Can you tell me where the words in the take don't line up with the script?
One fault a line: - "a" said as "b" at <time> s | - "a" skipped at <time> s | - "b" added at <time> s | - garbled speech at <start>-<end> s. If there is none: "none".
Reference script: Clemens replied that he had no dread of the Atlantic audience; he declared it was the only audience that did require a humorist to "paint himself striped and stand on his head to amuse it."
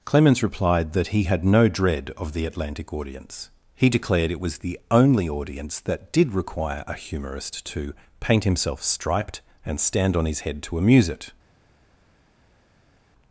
none